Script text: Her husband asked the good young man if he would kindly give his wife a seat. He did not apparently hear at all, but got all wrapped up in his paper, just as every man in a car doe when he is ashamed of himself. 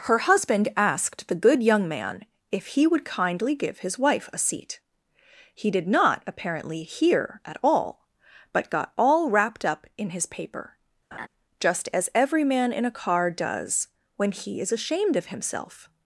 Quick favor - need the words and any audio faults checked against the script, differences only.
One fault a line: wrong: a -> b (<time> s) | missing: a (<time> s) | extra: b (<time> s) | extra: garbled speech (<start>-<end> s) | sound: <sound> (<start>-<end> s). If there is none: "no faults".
sound: laugh (11.1-11.3 s)
wrong: doe -> does (13.3 s)